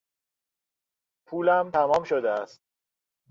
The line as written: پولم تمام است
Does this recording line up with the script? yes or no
no